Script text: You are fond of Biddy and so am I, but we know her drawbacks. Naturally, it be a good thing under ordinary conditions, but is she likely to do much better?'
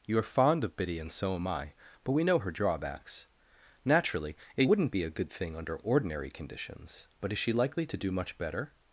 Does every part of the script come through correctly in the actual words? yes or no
no